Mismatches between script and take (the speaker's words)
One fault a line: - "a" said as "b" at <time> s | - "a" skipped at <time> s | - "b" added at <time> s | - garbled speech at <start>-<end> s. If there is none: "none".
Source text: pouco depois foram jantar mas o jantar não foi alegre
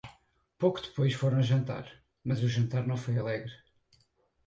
none